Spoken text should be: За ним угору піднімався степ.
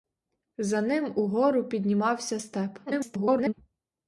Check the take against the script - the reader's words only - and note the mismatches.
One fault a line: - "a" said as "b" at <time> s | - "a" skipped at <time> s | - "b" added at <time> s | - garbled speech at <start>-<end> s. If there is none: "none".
- garbled speech at 2.9-3.5 s